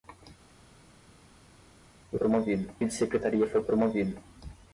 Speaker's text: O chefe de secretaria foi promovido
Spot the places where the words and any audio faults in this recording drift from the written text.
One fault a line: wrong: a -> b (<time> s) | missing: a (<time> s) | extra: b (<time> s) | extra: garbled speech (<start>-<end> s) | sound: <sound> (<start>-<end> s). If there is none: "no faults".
wrong: chefe -> promovido (2.2 s)